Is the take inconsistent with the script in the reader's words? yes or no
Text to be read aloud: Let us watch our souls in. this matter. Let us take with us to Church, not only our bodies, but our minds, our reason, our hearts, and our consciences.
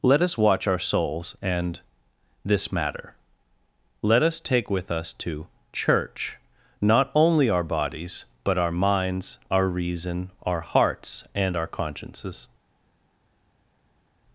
yes